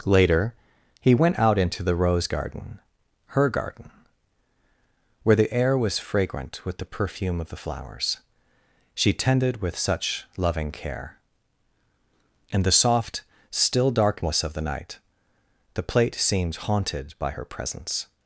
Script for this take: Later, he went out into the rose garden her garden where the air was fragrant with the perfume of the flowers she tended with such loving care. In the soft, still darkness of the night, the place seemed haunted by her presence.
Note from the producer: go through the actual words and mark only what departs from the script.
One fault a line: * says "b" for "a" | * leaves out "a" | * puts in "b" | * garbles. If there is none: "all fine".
* says "plate" for "place"